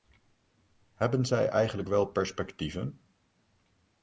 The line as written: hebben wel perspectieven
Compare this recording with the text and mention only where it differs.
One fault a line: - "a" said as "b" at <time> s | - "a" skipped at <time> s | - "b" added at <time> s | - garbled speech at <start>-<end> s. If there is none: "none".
- "zij eigenlijk" added at 1.2 s